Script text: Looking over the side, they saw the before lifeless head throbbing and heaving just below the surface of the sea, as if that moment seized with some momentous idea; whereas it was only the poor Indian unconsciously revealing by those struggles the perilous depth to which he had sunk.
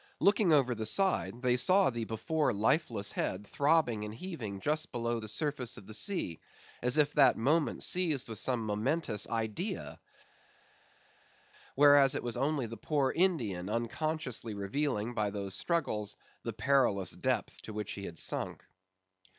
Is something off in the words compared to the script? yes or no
no